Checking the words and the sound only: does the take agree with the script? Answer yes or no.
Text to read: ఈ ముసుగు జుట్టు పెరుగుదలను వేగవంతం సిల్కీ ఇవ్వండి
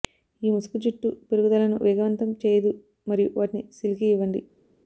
no